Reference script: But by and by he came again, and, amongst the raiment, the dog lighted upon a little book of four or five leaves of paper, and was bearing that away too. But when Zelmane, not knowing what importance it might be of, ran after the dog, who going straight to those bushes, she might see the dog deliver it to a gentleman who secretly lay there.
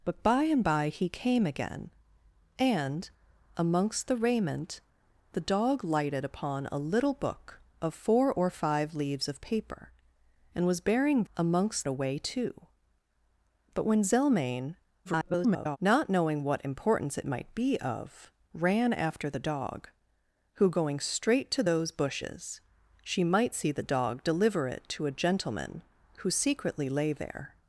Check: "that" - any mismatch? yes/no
yes